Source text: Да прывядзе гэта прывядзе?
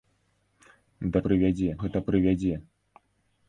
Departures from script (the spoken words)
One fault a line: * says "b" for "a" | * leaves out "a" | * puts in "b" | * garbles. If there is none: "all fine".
all fine